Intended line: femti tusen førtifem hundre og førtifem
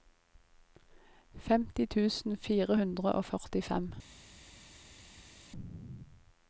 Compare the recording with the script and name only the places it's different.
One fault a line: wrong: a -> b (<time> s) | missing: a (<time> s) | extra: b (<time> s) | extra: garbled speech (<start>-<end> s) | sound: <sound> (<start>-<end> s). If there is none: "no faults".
wrong: førtifem -> fire (2.5 s)